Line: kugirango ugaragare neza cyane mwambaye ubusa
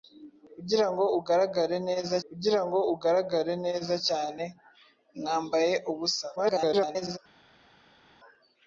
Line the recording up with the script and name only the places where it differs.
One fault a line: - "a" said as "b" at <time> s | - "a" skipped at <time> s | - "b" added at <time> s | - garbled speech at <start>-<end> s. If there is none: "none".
- "kugirango ugaragare neza" added at 2.3 s
- garbled speech at 6.4-7.2 s